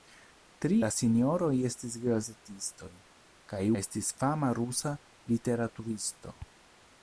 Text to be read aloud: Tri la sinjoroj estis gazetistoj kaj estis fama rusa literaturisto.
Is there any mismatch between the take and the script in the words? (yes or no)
no